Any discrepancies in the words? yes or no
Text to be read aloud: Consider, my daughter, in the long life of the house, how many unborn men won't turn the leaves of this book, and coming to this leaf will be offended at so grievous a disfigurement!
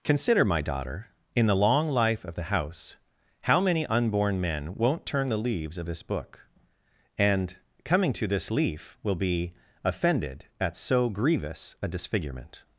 no